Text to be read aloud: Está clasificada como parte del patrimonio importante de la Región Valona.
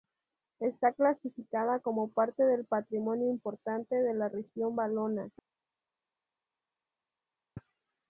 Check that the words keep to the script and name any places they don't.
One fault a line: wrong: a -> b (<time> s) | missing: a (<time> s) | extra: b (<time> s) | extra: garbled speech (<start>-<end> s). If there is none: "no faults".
no faults